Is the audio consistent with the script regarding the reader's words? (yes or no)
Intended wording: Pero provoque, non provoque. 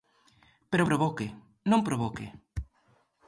yes